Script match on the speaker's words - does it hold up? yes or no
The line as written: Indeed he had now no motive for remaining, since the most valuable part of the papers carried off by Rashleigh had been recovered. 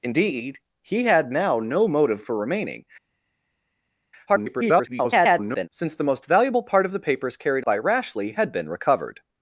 no